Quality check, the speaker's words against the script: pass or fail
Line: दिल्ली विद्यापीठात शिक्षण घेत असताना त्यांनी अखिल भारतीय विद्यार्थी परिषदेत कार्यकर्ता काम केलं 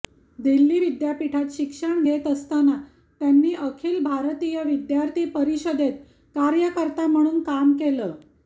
fail